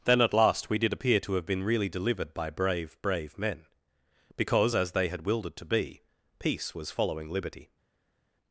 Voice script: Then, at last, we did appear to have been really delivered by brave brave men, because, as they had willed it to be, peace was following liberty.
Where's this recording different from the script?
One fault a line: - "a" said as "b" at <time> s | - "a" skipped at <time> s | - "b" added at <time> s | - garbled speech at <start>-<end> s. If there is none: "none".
none